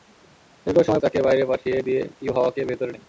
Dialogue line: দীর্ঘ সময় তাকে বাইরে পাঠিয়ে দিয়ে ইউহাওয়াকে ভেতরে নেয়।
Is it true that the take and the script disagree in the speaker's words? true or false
false